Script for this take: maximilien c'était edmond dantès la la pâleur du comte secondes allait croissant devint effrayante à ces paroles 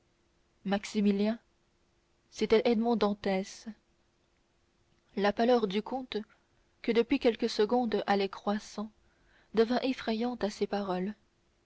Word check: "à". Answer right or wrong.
right